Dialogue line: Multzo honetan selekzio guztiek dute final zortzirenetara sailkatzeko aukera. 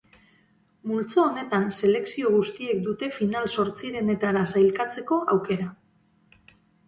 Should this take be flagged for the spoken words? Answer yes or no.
no